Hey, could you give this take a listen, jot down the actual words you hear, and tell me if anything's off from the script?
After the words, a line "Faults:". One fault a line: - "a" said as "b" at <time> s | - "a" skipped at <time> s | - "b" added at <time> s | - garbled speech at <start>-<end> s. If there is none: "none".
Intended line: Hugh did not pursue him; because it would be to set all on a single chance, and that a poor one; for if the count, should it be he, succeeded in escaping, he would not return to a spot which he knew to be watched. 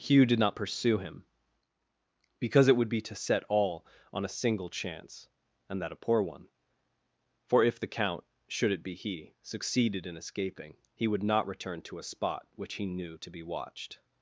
Hugh did not pursue him; because it would be to set all on a single chance, and that a poor one; for if the count, should it be he, succeeded in escaping, he would not return to a spot which he knew to be watched.
Faults:
none